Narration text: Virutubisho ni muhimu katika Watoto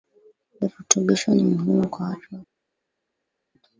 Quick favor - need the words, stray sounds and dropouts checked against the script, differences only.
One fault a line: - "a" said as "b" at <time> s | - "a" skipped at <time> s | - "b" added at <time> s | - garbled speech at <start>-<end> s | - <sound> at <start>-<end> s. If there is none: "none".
- "katika" said as "kwa" at 1.9 s